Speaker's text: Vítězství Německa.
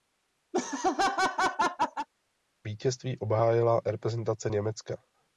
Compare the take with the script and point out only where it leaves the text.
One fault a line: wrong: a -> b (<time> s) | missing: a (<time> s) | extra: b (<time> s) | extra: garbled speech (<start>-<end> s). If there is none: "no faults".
extra: obhájila reprezentace (3.2 s)